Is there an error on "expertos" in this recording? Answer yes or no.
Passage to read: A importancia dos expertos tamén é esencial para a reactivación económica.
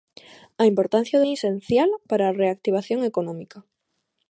yes